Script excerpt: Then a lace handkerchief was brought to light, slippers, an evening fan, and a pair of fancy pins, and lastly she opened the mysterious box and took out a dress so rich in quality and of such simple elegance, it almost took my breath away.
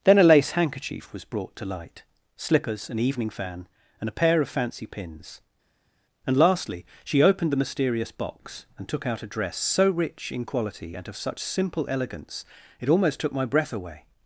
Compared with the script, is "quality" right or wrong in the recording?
right